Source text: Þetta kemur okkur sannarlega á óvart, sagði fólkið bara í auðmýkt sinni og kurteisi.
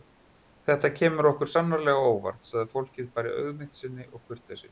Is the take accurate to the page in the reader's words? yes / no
yes